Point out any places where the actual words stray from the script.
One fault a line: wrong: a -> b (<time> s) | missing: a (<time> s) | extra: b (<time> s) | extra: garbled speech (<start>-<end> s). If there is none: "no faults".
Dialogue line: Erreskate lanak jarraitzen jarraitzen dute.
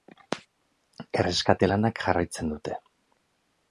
missing: jarraitzen (2.5 s)